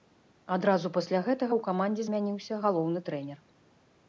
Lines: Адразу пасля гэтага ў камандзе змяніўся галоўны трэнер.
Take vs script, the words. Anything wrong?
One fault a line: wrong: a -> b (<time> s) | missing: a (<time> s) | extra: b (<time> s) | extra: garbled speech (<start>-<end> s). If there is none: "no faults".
no faults